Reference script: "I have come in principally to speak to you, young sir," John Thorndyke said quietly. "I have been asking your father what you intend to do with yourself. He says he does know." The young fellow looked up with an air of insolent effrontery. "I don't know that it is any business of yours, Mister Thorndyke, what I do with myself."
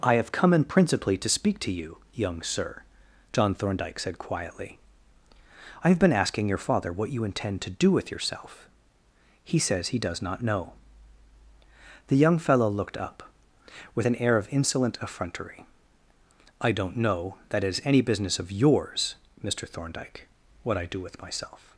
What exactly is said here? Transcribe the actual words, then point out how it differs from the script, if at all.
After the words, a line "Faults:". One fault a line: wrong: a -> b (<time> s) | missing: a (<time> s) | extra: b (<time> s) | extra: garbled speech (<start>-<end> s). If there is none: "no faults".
"I have come in principally to speak to you, young sir," John Thorndyke said quietly. "I have been asking your father what you intend to do with yourself. He says he does not know." The young fellow looked up with an air of insolent effrontery. "I don't know that it is any business of yours, Mister Thorndyke, what I do with myself."
Faults:
extra: not (10.2 s)